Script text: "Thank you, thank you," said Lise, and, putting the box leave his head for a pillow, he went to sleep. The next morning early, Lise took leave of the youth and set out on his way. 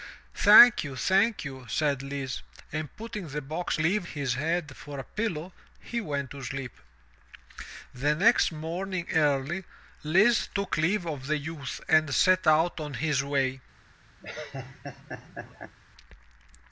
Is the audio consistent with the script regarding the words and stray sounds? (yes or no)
no